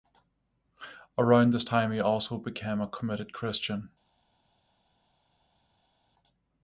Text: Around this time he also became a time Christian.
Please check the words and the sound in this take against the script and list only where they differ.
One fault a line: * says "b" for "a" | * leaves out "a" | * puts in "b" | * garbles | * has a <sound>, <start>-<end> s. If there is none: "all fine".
* says "committed" for "time"